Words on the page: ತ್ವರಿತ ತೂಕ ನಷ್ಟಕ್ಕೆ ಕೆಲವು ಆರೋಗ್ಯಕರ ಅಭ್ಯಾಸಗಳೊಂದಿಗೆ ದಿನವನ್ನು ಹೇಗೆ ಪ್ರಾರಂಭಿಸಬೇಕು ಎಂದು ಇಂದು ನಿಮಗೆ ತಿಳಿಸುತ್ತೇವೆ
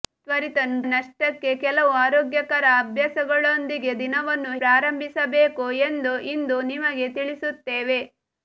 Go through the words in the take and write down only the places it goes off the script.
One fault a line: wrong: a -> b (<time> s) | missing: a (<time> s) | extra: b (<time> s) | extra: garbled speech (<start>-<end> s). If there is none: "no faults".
missing: ತೂಕ (0.6 s)
missing: ಹೇಗೆ (4.5 s)